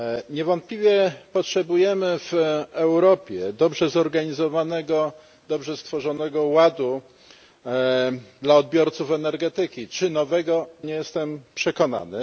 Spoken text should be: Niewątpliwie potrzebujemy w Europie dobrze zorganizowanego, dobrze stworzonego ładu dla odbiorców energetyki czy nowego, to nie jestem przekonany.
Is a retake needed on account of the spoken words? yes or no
yes